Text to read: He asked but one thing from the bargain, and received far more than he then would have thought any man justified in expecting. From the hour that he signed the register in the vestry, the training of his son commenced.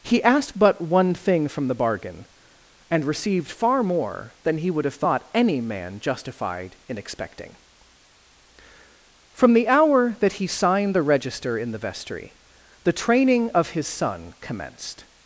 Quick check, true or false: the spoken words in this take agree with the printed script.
false